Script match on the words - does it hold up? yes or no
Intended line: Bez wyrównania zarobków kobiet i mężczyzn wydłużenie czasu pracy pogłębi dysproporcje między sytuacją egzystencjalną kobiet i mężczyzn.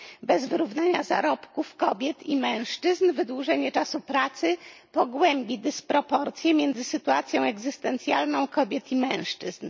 yes